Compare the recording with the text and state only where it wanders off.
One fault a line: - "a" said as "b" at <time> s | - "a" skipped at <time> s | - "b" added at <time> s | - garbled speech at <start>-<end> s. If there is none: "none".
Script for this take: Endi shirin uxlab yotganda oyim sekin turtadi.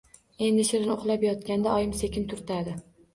none